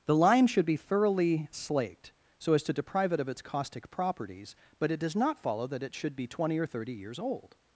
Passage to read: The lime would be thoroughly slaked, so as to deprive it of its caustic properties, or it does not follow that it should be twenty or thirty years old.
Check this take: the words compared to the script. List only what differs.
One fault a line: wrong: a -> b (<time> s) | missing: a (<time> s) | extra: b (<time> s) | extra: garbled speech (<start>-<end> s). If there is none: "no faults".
wrong: would -> should (0.5 s)
wrong: or -> but (4.8 s)